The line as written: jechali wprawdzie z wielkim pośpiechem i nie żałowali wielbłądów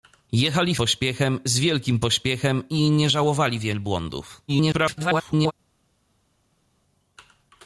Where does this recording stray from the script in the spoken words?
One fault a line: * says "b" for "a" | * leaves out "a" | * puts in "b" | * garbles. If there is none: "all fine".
* says "pośpiechem" for "wprawdzie"
* garbles